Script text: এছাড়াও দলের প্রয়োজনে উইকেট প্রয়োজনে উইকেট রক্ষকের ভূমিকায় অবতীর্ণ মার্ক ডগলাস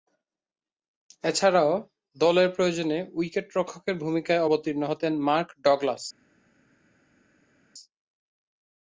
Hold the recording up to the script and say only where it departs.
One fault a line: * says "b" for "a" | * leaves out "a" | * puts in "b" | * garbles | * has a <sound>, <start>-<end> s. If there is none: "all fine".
* leaves out "প্রয়োজনে উইকেট"
* puts in "হতেন"